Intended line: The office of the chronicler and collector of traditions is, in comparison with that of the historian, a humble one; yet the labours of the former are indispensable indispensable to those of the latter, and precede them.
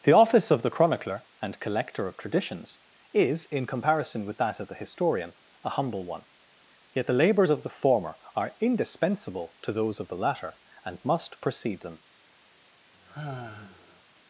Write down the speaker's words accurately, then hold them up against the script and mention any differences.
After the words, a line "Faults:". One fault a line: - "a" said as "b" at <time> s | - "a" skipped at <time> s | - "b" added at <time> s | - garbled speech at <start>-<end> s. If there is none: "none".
The office of the chronicler and collector of traditions is, in comparison with that of the historian, a humble one; yet the labours of the former are indispensable to those of the latter, and must precede them.
Faults:
- "indispensable" skipped at 9.6 s
- "must" added at 11.0 s